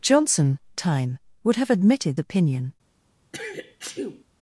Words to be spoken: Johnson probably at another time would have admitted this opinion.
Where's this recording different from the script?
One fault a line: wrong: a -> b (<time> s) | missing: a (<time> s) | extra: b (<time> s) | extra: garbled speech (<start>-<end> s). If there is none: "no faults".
missing: probably at another (0.6 s)
missing: this (2.2 s)